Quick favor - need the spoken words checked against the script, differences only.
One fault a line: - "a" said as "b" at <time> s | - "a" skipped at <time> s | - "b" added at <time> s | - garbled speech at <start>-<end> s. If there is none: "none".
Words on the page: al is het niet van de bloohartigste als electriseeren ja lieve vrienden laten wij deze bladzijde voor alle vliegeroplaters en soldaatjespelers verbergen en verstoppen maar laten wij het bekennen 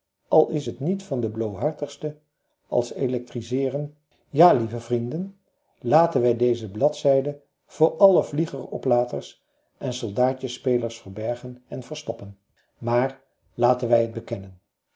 none